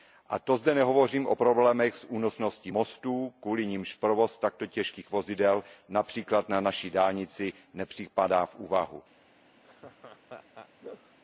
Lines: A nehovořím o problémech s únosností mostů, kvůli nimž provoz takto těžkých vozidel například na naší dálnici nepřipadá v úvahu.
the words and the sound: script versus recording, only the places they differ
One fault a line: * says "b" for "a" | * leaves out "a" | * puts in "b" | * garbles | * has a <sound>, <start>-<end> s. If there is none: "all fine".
* puts in "to zde"
* has a laugh, 9.6-11.2 s